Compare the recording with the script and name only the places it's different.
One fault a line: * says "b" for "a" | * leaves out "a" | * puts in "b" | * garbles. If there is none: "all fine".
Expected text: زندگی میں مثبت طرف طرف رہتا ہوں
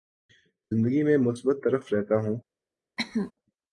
* leaves out "طرف"